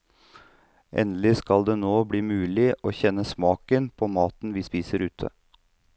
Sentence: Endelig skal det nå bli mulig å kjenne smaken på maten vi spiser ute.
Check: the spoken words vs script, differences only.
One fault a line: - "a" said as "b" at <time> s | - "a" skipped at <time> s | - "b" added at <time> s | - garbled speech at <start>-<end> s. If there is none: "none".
none